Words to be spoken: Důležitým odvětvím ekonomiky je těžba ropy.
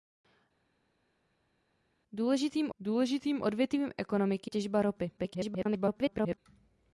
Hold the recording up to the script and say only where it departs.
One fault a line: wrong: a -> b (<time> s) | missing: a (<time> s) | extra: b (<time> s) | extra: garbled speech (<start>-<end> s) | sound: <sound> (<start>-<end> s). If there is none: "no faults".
extra: důležitým (2.8 s)
missing: je (4.5 s)
extra: garbled speech (5.2-6.4 s)